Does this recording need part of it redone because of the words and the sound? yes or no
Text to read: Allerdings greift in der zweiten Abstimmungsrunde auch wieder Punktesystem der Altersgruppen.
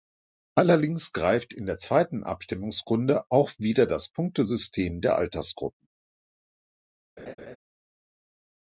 yes